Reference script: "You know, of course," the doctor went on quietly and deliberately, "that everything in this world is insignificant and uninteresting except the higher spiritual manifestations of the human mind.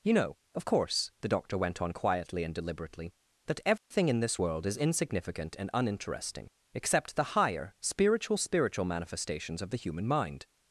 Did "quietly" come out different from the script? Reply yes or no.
no